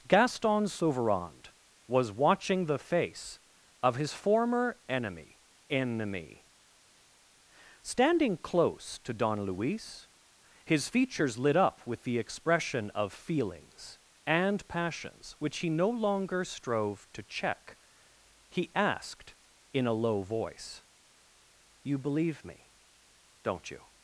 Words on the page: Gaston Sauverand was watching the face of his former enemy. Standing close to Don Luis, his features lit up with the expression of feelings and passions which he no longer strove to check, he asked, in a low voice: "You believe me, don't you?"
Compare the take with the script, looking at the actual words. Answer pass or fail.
fail